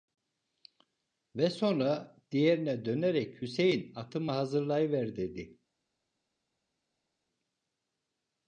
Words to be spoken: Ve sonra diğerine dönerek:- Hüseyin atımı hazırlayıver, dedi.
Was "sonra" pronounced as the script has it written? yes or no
yes